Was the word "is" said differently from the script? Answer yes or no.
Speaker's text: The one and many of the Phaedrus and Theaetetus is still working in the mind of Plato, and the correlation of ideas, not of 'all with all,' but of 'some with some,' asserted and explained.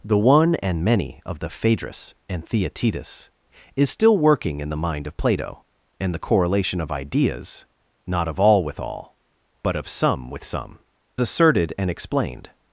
no